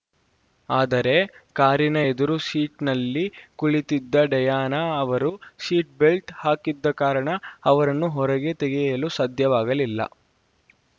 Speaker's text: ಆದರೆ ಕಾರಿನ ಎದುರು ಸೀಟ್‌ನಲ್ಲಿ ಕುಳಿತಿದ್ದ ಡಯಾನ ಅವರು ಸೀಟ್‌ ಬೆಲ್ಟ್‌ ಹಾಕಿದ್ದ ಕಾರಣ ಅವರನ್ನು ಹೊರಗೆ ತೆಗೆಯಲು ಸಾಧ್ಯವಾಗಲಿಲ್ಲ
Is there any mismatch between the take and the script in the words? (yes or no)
no